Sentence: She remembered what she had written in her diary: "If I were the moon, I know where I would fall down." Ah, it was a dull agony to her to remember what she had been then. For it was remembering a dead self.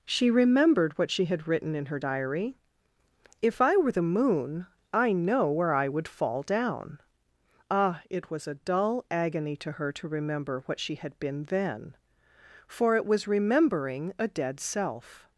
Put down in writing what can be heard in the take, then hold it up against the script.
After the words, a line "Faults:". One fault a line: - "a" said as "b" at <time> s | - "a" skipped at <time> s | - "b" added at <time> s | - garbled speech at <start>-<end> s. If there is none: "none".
She remembered what she had written in her diary: "If I were the moon, I know where I would fall down." Ah, it was a dull agony to her to remember what she had been then. For it was remembering a dead self.
Faults:
none